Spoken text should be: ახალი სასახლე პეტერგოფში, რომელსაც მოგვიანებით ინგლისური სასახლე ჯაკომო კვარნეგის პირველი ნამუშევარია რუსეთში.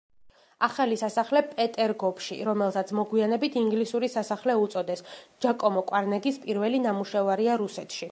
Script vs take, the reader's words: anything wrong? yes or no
yes